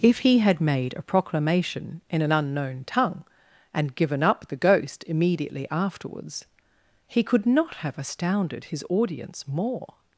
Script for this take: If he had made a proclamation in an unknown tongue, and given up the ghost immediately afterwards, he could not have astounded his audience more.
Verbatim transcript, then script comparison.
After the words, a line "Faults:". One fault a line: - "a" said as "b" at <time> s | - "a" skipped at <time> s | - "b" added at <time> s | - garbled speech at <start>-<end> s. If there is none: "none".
If he had made a proclamation in an unknown tongue, and given up the ghost immediately afterwards, he could not have astounded his audience more.
Faults:
none